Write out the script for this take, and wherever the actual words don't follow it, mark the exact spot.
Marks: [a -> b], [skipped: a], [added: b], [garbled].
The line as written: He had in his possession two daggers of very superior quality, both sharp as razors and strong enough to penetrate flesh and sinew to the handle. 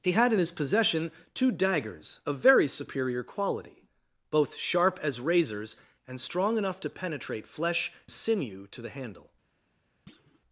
He had in his possession two daggers of very superior quality, both sharp as razors and strong enough to penetrate flesh [skipped: and] sinew to the handle.